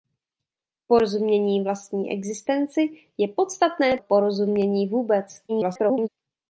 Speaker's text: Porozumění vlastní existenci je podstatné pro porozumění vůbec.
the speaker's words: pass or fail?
fail